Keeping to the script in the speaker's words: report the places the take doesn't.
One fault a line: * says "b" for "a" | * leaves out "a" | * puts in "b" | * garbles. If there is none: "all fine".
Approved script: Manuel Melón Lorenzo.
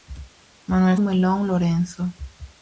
all fine